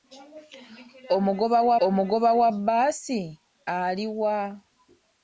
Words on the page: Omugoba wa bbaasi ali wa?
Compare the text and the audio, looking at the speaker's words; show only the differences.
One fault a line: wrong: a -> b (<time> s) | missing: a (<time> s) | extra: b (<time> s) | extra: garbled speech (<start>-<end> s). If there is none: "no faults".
extra: omugoba wa (1.9 s)